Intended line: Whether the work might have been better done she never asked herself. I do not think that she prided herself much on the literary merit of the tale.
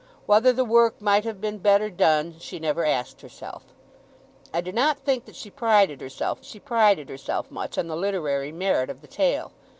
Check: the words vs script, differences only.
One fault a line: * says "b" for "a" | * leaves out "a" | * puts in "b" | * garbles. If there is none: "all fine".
* puts in "she prided herself"